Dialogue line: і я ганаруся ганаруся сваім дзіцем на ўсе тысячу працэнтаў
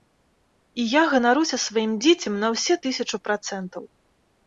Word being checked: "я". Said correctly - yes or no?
yes